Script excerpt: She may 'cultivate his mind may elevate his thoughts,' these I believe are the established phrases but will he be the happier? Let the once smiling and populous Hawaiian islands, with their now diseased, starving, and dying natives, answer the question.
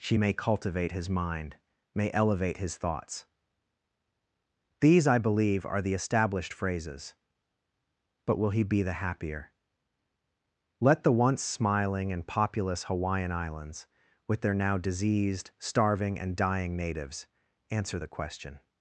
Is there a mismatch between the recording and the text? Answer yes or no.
no